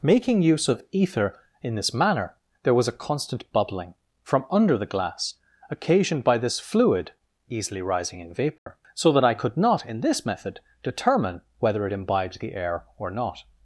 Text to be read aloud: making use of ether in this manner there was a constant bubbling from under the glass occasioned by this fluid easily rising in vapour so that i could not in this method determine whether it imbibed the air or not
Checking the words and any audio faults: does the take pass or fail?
fail